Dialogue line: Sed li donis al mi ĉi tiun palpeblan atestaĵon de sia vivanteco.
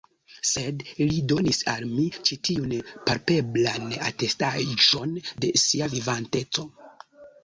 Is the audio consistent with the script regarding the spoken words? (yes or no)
yes